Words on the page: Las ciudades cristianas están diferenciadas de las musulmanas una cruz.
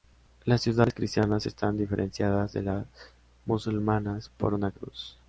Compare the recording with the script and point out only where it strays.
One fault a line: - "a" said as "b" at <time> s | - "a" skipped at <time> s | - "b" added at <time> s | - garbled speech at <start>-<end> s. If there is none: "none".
- "por" added at 4.4 s